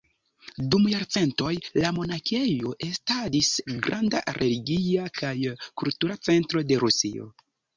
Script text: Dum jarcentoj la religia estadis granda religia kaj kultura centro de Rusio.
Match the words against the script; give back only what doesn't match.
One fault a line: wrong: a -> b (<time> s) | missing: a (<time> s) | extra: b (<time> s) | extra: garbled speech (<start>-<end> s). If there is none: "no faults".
wrong: religia -> monakejo (2.0 s)